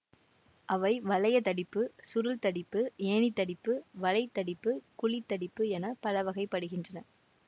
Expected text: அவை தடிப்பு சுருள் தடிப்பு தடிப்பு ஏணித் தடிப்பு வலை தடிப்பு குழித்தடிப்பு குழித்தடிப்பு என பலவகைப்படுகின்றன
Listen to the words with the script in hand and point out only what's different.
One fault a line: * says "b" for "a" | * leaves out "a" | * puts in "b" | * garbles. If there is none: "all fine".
* puts in "வளையத்"
* leaves out "தடிப்பு"
* leaves out "குழித்தடிப்பு"